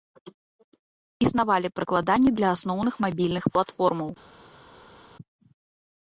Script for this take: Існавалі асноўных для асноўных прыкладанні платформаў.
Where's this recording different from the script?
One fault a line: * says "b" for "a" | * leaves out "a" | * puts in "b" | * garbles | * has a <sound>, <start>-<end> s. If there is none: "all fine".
* says "прыкладанні" for "асноўных"
* says "мабільных" for "прыкладанні"